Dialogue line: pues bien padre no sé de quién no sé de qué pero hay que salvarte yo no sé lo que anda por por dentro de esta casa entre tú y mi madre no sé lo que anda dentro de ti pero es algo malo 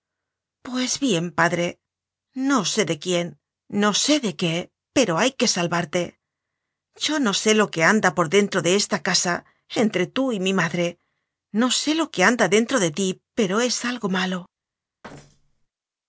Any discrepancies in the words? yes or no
yes